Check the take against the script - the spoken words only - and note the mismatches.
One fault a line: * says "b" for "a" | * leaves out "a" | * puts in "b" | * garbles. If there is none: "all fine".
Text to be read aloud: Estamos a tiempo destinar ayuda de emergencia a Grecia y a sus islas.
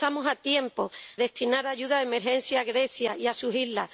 all fine